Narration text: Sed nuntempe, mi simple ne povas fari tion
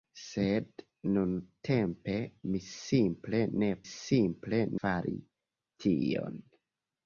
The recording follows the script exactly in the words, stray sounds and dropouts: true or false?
false